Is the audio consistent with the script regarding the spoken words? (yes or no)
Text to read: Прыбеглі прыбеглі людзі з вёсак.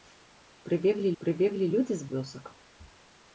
yes